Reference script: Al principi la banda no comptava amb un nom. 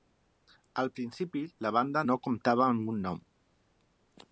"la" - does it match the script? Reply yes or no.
yes